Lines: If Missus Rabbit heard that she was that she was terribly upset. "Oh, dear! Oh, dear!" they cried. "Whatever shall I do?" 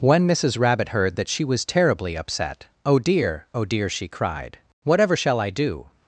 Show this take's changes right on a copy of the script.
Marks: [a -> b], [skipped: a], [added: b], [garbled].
[If -> When] Missus Rabbit heard that she was [skipped: that she was] terribly upset. "Oh, dear! Oh, dear!" [they -> she] cried. "Whatever shall I do?"